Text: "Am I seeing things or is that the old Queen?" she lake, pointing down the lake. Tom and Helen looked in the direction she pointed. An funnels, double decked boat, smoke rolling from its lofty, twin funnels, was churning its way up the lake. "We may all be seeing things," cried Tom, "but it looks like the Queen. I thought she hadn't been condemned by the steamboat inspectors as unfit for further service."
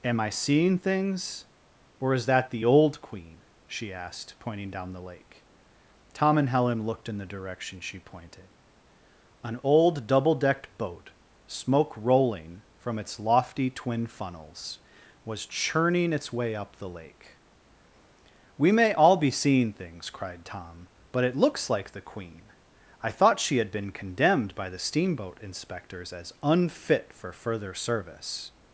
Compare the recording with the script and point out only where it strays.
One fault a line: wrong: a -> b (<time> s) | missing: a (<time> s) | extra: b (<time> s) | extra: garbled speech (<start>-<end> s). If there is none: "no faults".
wrong: lake -> asked (3.9 s)
wrong: funnels -> old (9.6 s)
wrong: hadn't -> had (23.6 s)